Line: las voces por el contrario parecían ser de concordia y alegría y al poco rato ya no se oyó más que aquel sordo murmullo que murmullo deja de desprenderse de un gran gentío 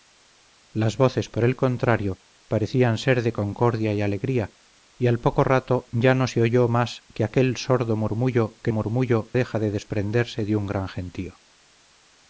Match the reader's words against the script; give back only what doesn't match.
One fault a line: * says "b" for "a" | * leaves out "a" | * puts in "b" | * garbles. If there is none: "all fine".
all fine